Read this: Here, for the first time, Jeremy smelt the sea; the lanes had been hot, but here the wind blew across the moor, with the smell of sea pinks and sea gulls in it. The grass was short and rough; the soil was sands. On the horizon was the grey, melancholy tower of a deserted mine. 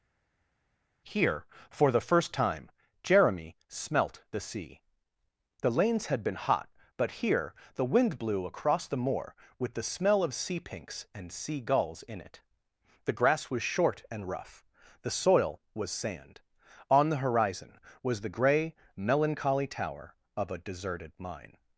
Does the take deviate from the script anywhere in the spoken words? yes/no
yes